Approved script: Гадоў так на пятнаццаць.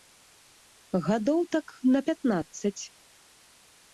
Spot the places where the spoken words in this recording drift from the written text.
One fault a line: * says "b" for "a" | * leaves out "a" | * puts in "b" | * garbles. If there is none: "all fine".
all fine